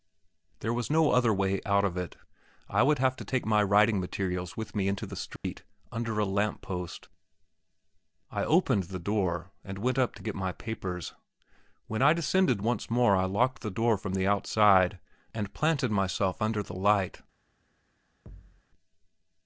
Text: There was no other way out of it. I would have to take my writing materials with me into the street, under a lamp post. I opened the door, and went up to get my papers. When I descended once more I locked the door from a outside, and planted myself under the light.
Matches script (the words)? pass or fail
fail